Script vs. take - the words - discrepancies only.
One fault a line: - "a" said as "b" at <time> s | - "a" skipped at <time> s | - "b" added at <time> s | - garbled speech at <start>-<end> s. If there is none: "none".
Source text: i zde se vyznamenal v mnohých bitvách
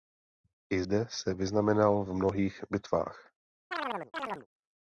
none